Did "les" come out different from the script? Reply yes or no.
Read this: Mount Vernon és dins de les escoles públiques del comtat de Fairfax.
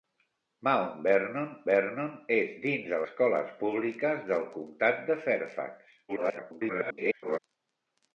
yes